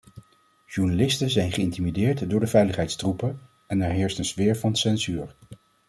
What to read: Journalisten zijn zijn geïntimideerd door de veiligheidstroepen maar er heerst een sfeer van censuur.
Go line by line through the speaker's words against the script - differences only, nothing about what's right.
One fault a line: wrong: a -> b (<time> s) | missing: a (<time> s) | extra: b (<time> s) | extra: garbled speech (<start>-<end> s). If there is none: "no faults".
missing: zijn (1.5 s)
wrong: maar -> en (3.7 s)